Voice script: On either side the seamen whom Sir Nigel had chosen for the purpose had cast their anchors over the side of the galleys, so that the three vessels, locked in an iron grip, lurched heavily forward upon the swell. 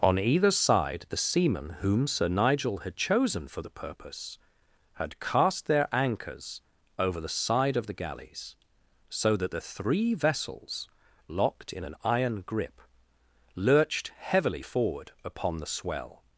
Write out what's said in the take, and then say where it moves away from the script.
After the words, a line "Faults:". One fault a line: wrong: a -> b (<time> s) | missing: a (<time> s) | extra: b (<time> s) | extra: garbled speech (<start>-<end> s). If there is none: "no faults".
On either side the seamen whom Sir Nigel had chosen for the purpose had cast their anchors over the side of the galleys, so that the three vessels, locked in an iron grip, lurched heavily forward upon the swell.
Faults:
no faults